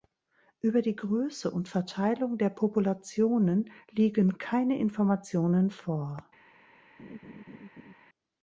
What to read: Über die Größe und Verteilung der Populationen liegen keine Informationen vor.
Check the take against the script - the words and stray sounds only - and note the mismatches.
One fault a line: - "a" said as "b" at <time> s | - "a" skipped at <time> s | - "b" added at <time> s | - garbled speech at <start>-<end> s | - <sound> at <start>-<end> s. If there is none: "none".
- laugh at 7.0-7.9 s